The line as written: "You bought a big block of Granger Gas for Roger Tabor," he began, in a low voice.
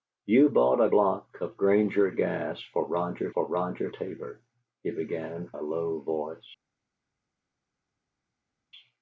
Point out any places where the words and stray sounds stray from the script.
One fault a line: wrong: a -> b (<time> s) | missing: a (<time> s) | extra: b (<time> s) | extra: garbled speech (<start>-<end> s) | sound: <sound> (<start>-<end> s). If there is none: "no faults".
missing: big (0.9 s)
extra: for Roger (3.3 s)
missing: in (5.5 s)